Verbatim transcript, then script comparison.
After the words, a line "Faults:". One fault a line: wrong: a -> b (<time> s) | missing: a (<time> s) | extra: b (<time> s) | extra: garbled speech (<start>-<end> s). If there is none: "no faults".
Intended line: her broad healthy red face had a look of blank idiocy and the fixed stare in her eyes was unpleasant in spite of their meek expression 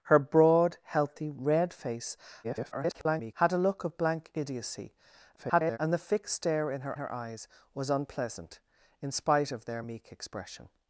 her broad healthy red face [garbled] had a look of blank idiocy [garbled] and the fixed stare in her her eyes was unpleasant in spite of their meek expression
Faults:
extra: garbled speech (2.4-3.3 s)
extra: garbled speech (5.4-5.8 s)
extra: her (6.9 s)